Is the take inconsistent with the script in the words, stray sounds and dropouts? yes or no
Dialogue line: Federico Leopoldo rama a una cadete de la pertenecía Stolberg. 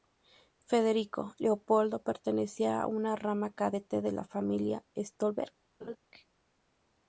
yes